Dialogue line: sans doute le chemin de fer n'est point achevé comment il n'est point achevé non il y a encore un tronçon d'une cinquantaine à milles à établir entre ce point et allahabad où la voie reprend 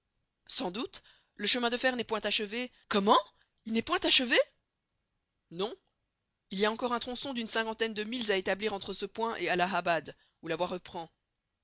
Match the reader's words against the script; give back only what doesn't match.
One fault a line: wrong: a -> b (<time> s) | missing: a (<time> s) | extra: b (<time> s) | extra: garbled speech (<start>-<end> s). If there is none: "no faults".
wrong: à -> de (7.9 s)